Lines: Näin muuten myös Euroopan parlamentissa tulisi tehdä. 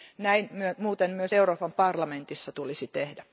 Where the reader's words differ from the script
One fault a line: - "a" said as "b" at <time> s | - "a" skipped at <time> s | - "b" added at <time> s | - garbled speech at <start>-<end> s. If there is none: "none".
none